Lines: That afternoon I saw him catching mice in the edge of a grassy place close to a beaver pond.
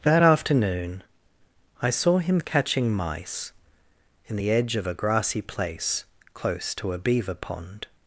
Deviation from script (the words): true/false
false